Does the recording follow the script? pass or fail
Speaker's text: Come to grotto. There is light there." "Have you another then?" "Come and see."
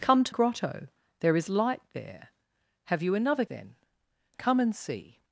pass